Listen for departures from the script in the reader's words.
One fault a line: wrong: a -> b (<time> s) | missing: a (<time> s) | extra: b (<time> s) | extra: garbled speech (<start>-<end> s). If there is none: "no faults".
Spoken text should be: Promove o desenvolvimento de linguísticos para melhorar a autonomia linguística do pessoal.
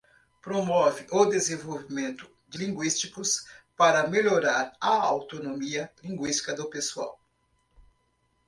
no faults